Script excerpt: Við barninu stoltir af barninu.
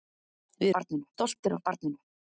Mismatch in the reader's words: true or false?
false